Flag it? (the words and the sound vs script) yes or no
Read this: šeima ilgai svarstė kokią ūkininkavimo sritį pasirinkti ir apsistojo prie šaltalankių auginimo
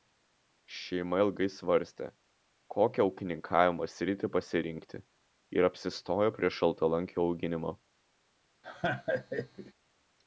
yes